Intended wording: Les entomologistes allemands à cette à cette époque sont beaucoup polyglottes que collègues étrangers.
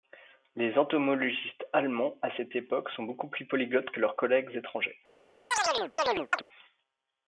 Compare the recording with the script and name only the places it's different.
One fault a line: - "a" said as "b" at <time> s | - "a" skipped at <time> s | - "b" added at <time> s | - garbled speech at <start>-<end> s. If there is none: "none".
- "à cette" skipped at 2.5 s
- "plus" added at 3.3 s
- "leurs" added at 4.0 s